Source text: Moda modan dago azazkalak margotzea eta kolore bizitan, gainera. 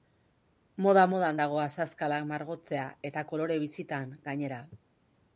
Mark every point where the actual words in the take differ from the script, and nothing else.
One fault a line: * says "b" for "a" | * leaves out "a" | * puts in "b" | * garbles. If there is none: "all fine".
all fine